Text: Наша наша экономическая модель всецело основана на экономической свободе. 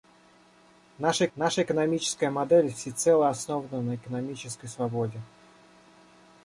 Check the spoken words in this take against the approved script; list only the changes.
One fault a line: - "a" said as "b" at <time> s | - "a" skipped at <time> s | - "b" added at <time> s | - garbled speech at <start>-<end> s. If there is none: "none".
none